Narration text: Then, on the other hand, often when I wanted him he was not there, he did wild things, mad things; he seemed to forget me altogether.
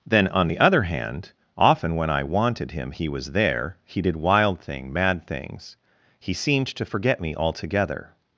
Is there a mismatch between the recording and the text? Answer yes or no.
yes